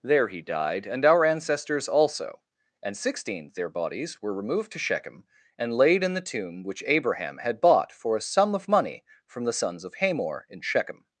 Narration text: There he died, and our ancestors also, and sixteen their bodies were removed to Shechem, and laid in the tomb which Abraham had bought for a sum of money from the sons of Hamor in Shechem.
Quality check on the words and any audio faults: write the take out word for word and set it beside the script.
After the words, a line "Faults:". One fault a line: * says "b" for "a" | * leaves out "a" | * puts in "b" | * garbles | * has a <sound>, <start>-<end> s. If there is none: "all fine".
There he died, and our ancestors also, and sixteen their bodies were removed to Shechem, and laid in the tomb which Abraham had bought for a sum of money from the sons of Hamor in Shechem.
Faults:
all fine